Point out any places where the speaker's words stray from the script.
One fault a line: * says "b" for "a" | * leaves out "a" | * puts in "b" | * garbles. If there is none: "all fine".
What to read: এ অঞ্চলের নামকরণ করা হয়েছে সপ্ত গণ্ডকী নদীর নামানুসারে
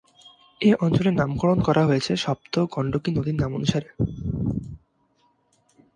all fine